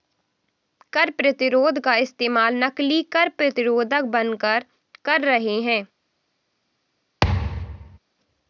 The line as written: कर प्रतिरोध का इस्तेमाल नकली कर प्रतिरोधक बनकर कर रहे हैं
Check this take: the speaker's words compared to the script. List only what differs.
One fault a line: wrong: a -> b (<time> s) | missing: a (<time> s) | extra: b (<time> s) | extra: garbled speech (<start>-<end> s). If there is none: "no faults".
no faults